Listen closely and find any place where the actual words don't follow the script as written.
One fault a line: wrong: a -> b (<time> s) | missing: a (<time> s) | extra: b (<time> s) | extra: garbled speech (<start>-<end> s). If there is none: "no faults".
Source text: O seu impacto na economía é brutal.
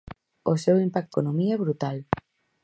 missing: na (1.1 s)